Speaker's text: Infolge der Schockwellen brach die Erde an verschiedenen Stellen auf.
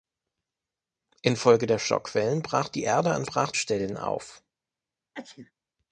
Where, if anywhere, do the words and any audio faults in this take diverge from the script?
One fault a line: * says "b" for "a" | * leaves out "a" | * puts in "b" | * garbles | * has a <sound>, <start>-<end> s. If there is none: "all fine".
* says "brach" for "verschiedenen"
* has a sneeze, 5.1-5.5 s